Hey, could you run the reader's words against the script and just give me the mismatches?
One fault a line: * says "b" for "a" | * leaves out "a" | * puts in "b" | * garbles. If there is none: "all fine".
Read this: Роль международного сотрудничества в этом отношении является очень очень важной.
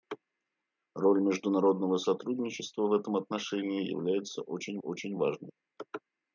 all fine